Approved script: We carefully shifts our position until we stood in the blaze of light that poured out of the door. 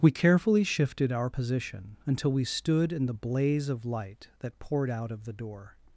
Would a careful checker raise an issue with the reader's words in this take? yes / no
yes